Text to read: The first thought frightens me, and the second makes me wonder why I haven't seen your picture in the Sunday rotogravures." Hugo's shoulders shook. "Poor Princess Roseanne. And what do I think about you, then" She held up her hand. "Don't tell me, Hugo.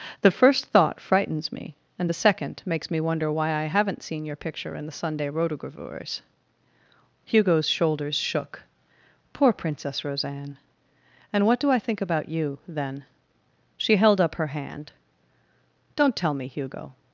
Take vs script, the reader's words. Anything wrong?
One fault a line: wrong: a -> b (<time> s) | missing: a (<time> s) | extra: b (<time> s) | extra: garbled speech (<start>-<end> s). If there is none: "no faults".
no faults